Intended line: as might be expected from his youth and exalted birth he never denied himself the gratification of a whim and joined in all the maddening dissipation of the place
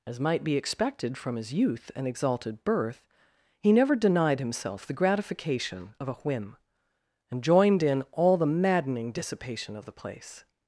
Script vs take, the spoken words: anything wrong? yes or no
no